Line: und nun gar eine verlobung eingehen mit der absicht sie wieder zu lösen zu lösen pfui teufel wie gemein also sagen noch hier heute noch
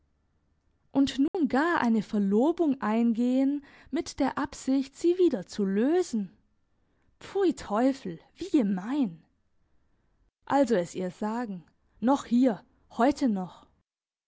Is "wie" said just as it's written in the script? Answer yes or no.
yes